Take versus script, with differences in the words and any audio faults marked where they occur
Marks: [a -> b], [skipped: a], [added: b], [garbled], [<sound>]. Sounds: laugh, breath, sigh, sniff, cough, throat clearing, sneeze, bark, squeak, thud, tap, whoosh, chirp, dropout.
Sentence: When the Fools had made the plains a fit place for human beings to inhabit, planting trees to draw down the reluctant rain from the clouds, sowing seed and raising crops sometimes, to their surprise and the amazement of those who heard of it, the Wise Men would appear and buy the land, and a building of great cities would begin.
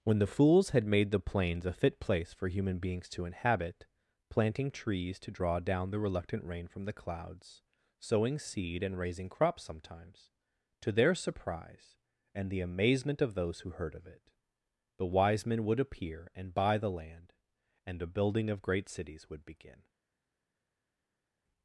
When the Fools had made the plains a fit place for human beings to inhabit, planting trees to draw down the reluctant rain from the clouds, sowing seed and raising crops sometimes, to their surprise and the amazement of those who heard of it, the Wise Men would appear and buy the land, and a building of great cities would begin.